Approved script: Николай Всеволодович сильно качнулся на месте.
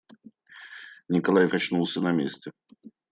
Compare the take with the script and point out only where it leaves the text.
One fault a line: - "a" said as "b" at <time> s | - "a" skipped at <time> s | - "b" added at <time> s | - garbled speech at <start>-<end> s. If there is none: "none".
- "Всеволодович сильно" skipped at 1.5 s